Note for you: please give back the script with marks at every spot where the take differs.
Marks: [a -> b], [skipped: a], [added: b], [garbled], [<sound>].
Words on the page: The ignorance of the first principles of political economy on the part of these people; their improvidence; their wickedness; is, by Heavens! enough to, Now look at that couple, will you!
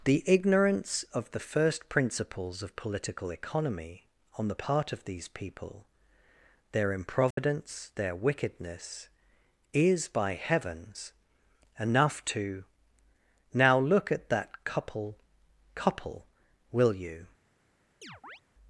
The ignorance of the first principles of political economy on the part of these people; their improvidence; [dropout] their wickedness; is, by Heavens! enough to, Now look at that couple, [added: couple] will you! [chirp]